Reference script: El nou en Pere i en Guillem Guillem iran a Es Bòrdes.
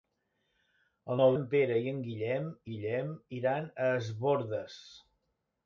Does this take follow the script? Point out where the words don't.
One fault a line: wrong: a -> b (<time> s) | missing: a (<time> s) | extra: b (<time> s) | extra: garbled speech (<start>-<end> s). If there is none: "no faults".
no faults